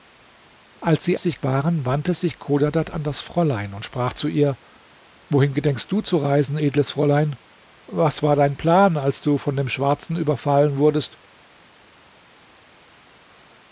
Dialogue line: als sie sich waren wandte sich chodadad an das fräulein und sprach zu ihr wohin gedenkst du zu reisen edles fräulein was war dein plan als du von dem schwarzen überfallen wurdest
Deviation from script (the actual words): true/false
false